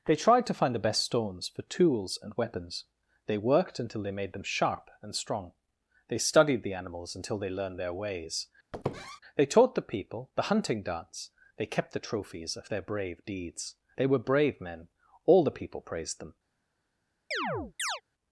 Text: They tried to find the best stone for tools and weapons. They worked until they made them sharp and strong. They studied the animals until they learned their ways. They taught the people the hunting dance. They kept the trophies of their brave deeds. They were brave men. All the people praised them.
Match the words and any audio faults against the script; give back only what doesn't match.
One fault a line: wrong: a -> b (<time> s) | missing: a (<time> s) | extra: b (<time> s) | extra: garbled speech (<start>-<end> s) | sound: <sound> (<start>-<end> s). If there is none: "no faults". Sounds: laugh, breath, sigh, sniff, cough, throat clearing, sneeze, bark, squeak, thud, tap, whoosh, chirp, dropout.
wrong: stone -> stones (1.0 s)
sound: squeak (8.7-9.2 s)
sound: chirp (17.3-18.0 s)